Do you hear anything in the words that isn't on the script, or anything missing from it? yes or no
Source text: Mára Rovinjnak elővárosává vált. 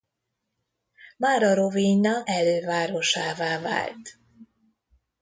no